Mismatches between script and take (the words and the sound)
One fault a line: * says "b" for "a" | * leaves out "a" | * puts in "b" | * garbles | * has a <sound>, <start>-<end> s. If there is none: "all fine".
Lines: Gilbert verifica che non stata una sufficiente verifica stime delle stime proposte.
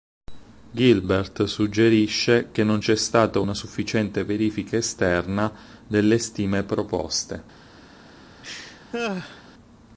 * says "suggerisce" for "verifica"
* puts in "c'è"
* says "esterna" for "stime"
* has a laugh, 8.4-9.4 s